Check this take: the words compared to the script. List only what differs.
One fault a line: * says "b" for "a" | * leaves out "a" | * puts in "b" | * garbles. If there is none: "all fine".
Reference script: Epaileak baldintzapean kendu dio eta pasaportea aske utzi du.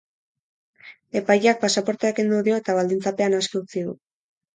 * says "pasaportea" for "baldintzapean"
* says "baldintzapean" for "pasaportea"